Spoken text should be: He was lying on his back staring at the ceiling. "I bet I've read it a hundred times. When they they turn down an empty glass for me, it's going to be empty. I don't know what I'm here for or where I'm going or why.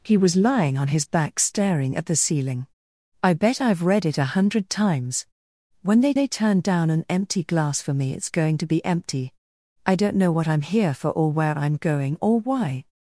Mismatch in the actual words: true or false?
false